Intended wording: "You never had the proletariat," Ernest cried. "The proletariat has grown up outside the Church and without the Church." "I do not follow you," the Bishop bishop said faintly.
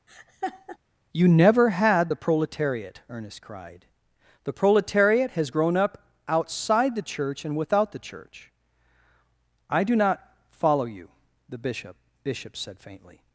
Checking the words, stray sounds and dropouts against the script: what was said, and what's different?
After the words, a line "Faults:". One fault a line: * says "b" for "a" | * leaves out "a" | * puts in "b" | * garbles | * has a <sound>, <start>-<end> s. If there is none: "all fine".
"You never had the proletariat," Ernest cried. "The proletariat has grown up outside the Church and without the Church." "I do not follow you," the Bishop bishop said faintly.
Faults:
* has a laugh, 0.1-0.8 s